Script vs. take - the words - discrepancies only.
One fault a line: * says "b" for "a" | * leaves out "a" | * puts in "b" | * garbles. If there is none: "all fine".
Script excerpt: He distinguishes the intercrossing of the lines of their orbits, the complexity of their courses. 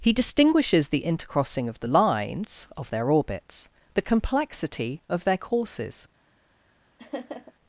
all fine